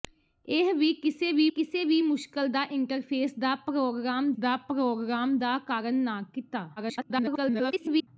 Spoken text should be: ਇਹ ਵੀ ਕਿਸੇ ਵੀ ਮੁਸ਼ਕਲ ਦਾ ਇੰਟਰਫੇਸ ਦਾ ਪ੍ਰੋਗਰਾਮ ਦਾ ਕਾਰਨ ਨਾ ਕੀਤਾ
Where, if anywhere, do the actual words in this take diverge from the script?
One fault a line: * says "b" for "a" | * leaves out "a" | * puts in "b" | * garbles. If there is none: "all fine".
* puts in "ਕਿਸੇ ਵੀ"
* puts in "ਪ੍ਰੋਗਰਾਮ ਦਾ"
* garbles